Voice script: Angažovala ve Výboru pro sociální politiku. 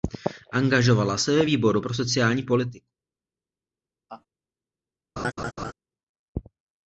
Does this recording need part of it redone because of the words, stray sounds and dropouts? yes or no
yes